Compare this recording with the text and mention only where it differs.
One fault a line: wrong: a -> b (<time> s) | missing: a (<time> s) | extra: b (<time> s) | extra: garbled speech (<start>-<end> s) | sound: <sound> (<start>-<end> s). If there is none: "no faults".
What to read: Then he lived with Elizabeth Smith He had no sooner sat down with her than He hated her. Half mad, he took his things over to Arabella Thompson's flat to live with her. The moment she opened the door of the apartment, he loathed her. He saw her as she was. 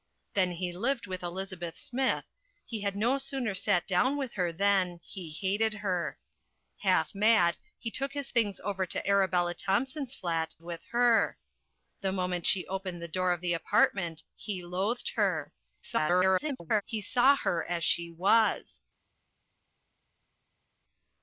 missing: to live (10.6 s)
extra: garbled speech (15.8-16.8 s)